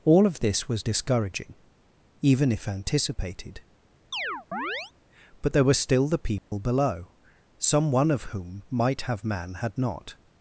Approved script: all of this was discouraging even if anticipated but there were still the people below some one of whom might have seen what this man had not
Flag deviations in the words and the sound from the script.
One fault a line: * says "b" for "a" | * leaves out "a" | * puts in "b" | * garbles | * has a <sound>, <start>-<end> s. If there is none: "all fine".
* has a chirp, 4.1-4.9 s
* has a dropout, 6.4-6.5 s
* leaves out "seen what this"